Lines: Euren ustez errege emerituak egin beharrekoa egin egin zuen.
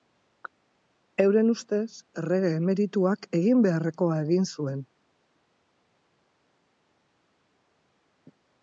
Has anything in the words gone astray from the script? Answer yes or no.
yes